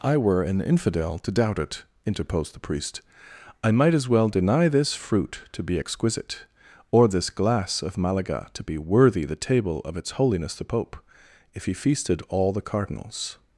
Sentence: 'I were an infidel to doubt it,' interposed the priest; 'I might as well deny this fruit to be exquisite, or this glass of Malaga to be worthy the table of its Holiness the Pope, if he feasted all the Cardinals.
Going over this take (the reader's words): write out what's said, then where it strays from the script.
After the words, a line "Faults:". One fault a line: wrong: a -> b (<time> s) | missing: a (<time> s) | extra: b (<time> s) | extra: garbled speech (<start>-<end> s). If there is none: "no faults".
'I were an infidel to doubt it,' interposed the priest; 'I might as well deny this fruit to be exquisite, or this glass of Malaga to be worthy the table of its Holiness the Pope, if he feasted all the Cardinals.
Faults:
no faults